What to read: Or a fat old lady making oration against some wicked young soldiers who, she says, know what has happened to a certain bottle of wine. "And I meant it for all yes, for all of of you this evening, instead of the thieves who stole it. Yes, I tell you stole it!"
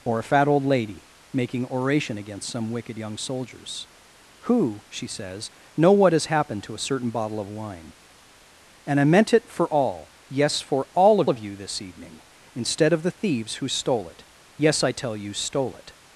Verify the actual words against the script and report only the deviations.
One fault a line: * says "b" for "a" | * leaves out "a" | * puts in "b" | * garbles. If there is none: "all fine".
all fine